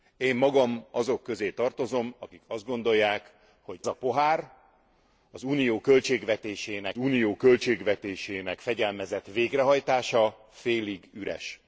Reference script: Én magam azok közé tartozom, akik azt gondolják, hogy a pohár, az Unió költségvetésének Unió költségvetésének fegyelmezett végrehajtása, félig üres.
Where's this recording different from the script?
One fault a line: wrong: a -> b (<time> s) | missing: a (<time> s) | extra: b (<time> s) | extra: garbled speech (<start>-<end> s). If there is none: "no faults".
no faults